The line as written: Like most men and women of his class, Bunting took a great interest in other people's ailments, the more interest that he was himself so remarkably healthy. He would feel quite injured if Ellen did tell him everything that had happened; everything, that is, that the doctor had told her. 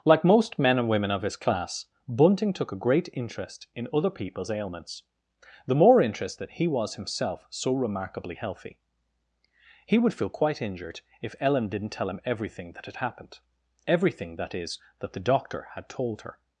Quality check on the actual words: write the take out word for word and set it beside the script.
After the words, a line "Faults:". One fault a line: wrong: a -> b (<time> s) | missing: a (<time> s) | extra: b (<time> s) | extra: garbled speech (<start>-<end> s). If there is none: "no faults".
Like most men and women of his class, Bunting took a great interest in other people's ailments, the more interest that he was himself so remarkably healthy. He would feel quite injured if Ellen didn't tell him everything that had happened; everything, that is, that the doctor had told her.
Faults:
wrong: did -> didn't (11.7 s)